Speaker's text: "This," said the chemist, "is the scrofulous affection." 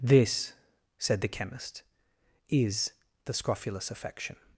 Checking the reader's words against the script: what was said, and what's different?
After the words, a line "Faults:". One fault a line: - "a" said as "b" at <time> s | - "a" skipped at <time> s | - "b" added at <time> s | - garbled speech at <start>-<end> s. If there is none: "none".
"This," said the chemist, "is the scrofulous affection."
Faults:
none